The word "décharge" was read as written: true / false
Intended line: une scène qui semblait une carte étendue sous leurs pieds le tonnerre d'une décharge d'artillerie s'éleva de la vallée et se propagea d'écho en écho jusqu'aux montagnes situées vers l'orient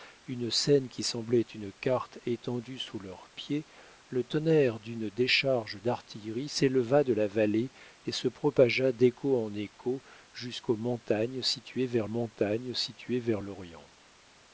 true